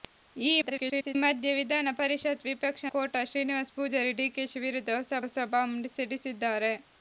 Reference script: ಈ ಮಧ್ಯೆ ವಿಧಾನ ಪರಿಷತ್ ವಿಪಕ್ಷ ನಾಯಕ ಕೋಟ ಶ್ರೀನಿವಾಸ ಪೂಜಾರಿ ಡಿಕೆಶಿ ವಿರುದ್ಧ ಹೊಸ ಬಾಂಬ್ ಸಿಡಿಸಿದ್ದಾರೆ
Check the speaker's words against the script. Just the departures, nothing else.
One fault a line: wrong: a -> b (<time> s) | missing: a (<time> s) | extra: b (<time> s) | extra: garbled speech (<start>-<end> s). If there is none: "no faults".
extra: garbled speech (0.6-1.2 s)
missing: ನಾಯಕ (2.9 s)
extra: ಹೊಸ (5.2 s)